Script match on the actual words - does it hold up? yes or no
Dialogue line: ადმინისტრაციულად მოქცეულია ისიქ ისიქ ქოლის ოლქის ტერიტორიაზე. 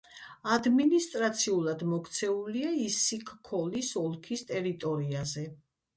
no